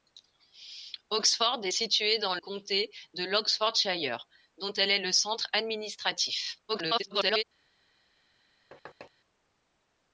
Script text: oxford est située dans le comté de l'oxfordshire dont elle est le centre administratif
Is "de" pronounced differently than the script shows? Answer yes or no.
no